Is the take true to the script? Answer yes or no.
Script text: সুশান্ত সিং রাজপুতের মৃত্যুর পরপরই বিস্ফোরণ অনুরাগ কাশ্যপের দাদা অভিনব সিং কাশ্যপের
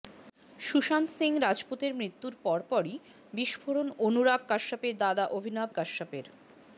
no